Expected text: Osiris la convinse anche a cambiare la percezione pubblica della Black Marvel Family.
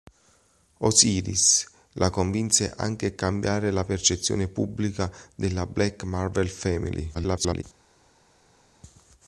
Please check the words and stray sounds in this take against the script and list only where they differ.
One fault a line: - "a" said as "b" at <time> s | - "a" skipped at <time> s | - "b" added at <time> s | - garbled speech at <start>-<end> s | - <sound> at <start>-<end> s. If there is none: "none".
- garbled speech at 7.1-7.6 s